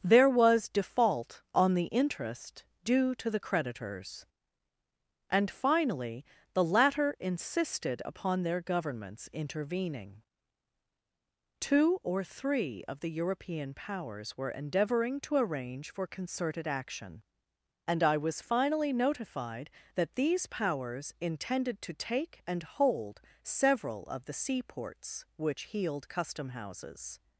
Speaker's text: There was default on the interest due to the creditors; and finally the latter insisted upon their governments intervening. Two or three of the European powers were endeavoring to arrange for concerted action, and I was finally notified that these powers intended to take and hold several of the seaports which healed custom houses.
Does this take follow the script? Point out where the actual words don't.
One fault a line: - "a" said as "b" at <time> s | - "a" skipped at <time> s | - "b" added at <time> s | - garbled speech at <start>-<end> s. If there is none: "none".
none